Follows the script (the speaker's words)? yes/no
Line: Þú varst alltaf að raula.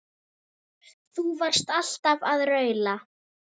yes